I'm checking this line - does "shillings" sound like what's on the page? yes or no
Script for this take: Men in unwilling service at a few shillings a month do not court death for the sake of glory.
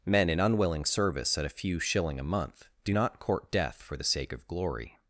no